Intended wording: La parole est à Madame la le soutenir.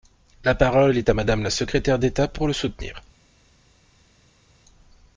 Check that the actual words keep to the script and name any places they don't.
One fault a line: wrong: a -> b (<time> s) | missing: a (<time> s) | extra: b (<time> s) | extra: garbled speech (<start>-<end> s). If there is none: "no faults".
extra: secrétaire d'État pour (1.5 s)